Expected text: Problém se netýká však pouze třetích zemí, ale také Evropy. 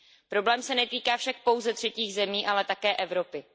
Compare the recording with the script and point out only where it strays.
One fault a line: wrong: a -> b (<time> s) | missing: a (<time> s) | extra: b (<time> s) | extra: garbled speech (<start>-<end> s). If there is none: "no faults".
no faults